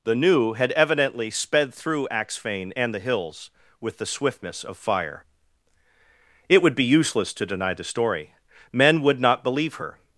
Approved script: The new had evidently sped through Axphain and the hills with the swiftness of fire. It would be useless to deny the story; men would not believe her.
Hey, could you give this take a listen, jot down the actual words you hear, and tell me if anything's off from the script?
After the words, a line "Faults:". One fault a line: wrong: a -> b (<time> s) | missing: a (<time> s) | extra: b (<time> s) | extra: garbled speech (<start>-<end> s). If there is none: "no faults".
The new had evidently sped through Axphain and the hills with the swiftness of fire. It would be useless to deny the story; men would not believe her.
Faults:
no faults